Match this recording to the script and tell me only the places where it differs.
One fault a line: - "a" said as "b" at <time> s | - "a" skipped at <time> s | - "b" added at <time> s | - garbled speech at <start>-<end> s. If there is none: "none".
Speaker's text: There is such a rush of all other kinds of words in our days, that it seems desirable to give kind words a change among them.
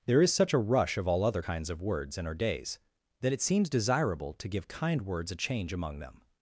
none